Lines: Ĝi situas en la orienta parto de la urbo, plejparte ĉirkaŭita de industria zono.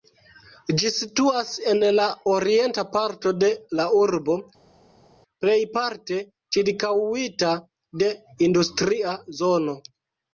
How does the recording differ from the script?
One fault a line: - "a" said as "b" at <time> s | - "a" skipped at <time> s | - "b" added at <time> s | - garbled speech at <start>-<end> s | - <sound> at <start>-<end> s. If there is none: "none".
none